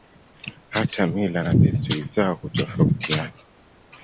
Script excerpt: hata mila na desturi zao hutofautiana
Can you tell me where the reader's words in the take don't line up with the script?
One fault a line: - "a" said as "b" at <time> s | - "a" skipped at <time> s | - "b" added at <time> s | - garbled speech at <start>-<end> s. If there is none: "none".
none